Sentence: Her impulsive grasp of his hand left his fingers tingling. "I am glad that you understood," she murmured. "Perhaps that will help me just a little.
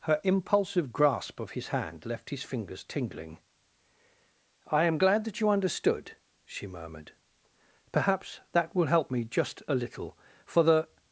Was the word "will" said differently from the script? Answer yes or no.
no